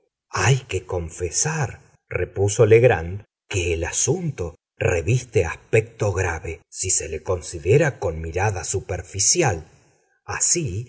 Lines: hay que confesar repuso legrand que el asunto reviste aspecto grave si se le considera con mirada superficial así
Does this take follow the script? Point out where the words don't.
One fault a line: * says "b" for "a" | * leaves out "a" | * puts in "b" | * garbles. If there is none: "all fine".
all fine